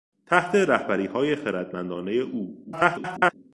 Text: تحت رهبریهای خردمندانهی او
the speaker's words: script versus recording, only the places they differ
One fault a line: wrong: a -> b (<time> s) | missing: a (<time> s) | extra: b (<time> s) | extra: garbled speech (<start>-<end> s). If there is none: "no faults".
extra: garbled speech (2.6-3.3 s)